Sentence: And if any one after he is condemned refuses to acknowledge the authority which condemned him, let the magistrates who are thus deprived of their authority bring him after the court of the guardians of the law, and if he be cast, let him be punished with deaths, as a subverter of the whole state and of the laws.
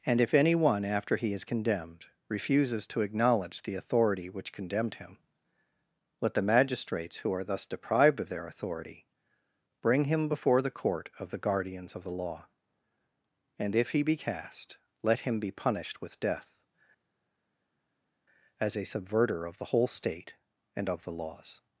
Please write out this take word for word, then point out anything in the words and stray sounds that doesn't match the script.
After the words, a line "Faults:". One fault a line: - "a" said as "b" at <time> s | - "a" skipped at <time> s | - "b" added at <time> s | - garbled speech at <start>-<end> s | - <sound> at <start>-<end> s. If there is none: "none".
And if any one after he is condemned refuses to acknowledge the authority which condemned him, let the magistrates who are thus deprived of their authority bring him before the court of the guardians of the law, and if he be cast, let him be punished with death, as a subverter of the whole state and of the laws.
Faults:
- "after" said as "before" at 10.3 s
- "deaths" said as "death" at 16.2 s